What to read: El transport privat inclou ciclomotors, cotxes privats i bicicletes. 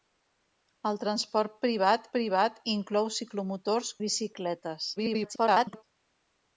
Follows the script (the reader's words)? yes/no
no